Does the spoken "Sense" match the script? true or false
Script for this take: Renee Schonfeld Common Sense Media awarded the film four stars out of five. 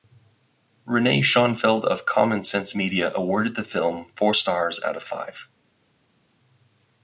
true